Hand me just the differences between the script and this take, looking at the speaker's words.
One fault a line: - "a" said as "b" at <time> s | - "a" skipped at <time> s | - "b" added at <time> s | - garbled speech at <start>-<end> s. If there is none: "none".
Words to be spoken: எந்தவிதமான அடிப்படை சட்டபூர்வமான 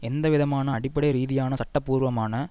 - "ரீதியான" added at 1.1 s